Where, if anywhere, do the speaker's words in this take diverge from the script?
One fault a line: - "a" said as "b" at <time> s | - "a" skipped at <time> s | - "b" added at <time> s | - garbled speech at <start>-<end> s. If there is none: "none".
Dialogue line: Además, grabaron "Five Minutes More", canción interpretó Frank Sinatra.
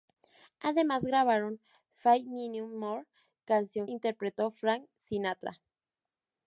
none